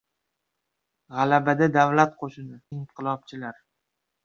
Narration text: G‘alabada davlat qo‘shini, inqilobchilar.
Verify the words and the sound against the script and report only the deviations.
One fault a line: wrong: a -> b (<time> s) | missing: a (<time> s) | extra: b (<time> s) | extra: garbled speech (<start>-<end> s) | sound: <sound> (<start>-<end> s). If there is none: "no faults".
no faults